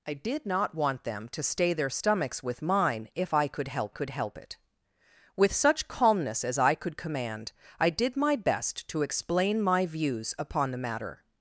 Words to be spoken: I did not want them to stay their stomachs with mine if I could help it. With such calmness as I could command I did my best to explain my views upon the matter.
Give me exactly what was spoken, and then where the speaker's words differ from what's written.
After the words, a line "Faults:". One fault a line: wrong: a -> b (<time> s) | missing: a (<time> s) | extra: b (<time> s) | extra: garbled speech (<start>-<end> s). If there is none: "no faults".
I did not want them to stay their stomachs with mine if I could help could help it. With such calmness as I could command I did my best to explain my views upon the matter.
Faults:
extra: could help (3.9 s)